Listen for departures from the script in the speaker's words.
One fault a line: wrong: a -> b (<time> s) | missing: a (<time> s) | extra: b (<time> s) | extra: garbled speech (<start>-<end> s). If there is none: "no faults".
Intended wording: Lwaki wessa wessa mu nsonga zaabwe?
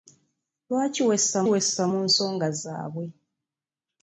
no faults